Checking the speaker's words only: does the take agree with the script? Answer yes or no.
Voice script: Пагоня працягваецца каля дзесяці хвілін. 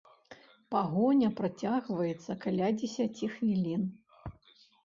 yes